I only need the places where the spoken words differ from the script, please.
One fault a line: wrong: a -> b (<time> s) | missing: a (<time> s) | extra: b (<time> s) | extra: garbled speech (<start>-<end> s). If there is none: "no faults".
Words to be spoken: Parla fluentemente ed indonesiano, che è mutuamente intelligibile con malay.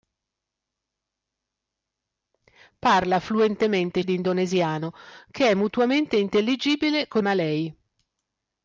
no faults